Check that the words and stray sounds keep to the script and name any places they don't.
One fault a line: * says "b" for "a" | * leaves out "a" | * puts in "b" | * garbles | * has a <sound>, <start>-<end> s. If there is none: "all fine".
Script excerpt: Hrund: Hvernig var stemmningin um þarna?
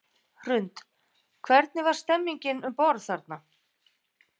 * puts in "borð"